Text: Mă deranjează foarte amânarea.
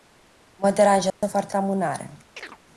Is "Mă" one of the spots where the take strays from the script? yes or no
no